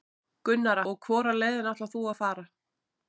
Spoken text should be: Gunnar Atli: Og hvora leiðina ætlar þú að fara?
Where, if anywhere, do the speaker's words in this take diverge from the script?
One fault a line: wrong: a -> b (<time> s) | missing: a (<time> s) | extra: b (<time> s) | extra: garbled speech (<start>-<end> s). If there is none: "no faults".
missing: Atli (0.8 s)